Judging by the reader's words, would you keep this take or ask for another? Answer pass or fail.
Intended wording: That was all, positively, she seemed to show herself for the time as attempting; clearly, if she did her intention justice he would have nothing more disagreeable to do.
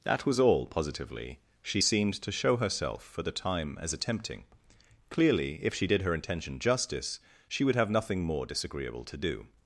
fail